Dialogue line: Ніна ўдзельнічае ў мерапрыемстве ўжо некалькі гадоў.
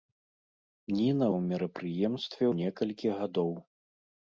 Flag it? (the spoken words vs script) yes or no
yes